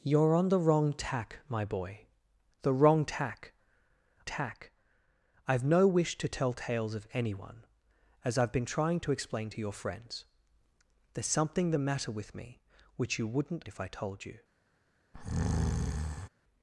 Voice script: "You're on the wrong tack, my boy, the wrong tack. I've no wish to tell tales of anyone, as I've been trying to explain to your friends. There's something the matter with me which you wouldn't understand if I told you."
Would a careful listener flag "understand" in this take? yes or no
yes